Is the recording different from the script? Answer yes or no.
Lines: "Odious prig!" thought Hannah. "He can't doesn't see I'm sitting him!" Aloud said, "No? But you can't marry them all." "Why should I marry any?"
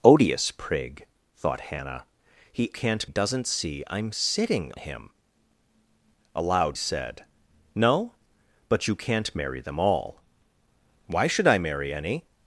no